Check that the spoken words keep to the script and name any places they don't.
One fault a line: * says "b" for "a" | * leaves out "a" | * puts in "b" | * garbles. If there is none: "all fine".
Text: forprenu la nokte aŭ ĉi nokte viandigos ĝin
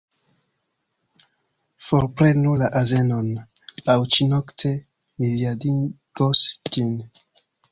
* says "azenon" for "nokte"
* puts in "mi"